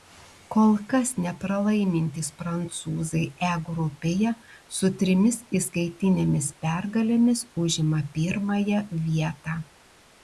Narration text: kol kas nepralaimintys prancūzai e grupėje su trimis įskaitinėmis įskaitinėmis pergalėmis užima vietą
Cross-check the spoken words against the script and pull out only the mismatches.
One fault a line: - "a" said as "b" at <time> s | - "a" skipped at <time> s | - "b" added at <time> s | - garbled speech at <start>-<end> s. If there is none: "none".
- "įskaitinėmis" skipped at 6.5 s
- "pirmąją" added at 8.2 s